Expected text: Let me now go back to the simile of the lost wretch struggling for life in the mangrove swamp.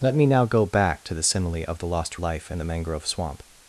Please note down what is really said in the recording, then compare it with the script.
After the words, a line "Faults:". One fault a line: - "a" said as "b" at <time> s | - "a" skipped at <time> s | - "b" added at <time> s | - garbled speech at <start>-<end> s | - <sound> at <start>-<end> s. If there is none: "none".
Let me now go back to the simile of the lost life in the mangrove swamp.
Faults:
- "wretch struggling for" skipped at 2.2 s